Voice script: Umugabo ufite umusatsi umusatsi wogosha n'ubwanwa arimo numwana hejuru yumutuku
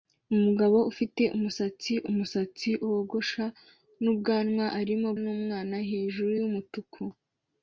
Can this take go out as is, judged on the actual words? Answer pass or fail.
pass